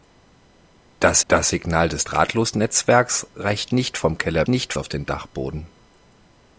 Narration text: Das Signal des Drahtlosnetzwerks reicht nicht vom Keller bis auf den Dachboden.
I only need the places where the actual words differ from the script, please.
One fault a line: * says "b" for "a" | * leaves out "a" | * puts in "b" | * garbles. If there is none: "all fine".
* puts in "das"
* says "nicht" for "bis"